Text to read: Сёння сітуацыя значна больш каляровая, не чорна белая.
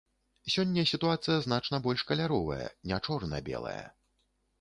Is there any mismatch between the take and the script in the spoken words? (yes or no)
no